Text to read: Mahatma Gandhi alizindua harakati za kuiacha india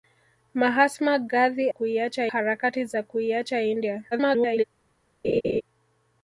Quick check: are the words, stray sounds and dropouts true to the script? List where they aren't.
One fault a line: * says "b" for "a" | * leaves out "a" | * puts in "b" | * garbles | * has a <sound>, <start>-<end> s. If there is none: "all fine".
* says "kuiacha" for "alizindua"
* garbles
* has a laugh, 5.2-5.6 s